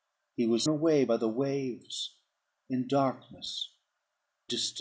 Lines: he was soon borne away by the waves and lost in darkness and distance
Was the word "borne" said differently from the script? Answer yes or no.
yes